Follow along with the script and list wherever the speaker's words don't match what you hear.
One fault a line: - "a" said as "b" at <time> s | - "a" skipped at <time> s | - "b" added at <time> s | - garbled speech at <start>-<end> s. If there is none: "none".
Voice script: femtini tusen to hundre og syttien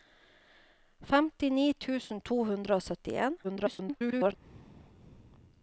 - garbled speech at 3.4-4.4 s